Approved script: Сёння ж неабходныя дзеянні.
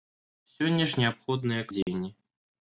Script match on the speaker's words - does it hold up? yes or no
yes